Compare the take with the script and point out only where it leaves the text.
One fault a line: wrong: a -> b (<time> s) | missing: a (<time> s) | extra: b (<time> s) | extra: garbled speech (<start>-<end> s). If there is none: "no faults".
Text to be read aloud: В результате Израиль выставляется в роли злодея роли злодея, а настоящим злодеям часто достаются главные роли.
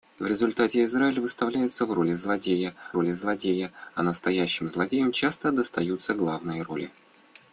no faults